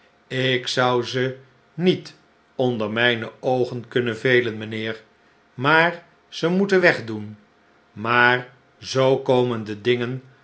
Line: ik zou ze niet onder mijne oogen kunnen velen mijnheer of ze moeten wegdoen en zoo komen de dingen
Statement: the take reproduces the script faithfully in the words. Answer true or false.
false